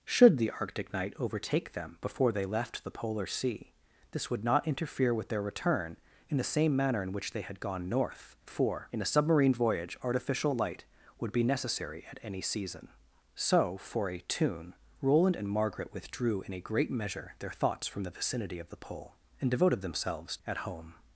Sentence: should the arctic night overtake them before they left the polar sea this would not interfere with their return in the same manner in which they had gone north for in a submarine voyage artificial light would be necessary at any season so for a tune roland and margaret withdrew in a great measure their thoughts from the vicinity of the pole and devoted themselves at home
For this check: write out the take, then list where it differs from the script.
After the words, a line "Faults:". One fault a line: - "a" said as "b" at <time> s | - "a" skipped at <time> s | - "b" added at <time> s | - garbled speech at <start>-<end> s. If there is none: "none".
should the arctic night overtake them before they left the polar sea this would not interfere with their return in the same manner in which they had gone north for in a submarine voyage artificial light would be necessary at any season so for a tune roland and margaret withdrew in a great measure their thoughts from the vicinity of the pole and devoted themselves at home
Faults:
none